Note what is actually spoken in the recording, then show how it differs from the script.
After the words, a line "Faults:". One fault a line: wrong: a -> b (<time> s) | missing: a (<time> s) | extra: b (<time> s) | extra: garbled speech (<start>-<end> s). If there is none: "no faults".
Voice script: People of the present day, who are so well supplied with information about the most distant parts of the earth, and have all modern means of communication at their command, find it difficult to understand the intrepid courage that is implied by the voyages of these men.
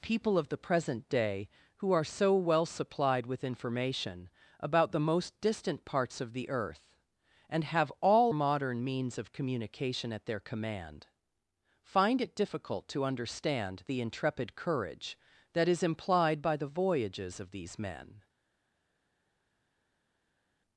People of the present day, who are so well supplied with information about the most distant parts of the earth, and have all modern means of communication at their command, find it difficult to understand the intrepid courage that is implied by the voyages of these men.
Faults:
no faults